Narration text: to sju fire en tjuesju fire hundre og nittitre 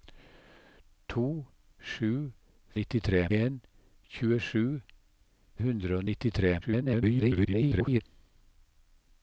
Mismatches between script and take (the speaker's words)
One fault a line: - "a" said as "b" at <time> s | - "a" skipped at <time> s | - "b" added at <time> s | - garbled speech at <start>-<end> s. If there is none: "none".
- "fire" said as "nittitre" at 2.8 s
- "fire" skipped at 4.7 s
- garbled speech at 6.6-8.0 s